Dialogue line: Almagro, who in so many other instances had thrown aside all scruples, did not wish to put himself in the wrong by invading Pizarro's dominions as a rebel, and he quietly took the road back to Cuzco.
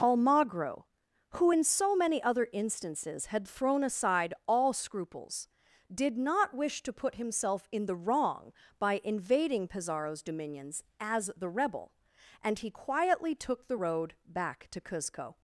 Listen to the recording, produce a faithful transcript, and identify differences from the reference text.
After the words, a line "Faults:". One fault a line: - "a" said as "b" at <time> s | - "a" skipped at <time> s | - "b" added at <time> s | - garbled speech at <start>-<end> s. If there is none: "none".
Almagro, who in so many other instances had thrown aside all scruples, did not wish to put himself in the wrong by invading Pizarro's dominions as the rebel, and he quietly took the road back to Cuzco.
Faults:
- "a" said as "the" at 11.4 s